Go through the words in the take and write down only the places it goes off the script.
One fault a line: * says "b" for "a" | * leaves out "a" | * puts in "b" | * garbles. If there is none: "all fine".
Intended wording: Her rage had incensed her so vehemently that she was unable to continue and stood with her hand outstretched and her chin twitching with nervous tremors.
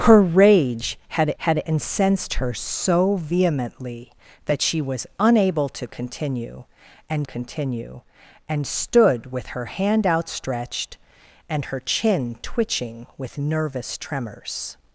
* puts in "had"
* puts in "continue and"